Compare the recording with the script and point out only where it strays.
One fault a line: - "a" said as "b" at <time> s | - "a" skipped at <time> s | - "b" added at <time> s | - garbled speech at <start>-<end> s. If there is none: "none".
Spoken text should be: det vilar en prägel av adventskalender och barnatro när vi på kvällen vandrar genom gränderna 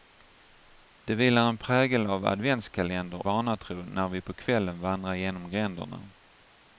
- "och" skipped at 3.2 s